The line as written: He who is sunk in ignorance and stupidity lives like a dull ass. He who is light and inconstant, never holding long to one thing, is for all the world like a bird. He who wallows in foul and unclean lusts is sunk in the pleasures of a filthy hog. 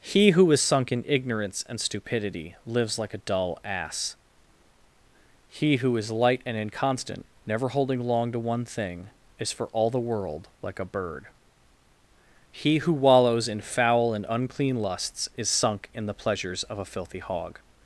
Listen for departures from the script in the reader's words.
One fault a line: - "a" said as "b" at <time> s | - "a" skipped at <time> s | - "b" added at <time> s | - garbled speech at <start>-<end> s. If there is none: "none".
none